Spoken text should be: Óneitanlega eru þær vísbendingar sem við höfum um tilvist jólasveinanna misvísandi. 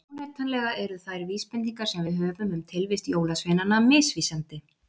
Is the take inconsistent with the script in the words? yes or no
no